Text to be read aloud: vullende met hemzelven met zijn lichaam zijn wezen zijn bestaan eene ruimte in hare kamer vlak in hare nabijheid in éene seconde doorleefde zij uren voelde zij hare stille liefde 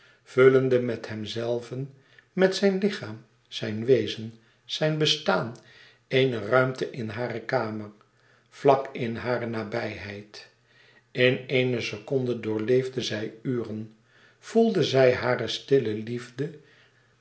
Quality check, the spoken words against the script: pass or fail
pass